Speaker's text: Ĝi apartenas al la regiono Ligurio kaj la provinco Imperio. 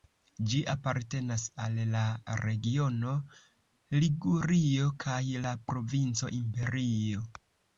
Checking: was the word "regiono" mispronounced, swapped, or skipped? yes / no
no